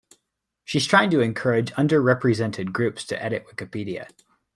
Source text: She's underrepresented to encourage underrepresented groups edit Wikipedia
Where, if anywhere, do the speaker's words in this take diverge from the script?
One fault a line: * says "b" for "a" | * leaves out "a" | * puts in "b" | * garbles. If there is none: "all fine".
* says "trying" for "underrepresented"
* puts in "to"